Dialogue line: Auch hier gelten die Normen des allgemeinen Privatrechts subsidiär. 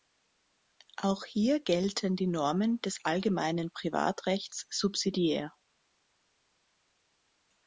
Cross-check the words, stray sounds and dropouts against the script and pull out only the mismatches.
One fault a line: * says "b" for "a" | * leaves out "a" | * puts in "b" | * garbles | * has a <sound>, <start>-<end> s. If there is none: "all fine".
all fine